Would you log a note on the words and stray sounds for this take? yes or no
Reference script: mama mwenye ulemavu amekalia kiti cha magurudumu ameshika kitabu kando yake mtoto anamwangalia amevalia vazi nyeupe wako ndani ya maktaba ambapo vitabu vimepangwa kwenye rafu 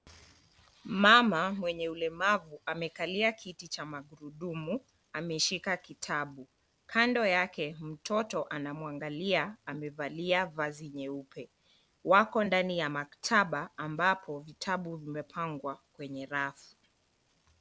no